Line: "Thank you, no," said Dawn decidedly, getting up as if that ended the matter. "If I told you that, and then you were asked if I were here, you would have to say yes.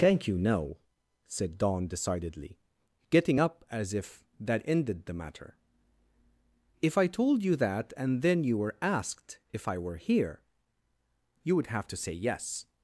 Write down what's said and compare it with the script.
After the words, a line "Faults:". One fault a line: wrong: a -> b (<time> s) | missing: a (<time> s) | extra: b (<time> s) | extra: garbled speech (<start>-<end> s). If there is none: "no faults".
"Thank you, no," said Dawn decidedly, getting up as if that ended the matter. "If I told you that, and then you were asked if I were here, you would have to say yes.
Faults:
no faults